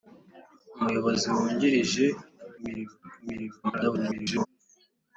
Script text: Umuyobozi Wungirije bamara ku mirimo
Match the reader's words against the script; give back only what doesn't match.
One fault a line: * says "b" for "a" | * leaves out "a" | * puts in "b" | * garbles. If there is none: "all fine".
* says "mirimo" for "bamara"
* garbles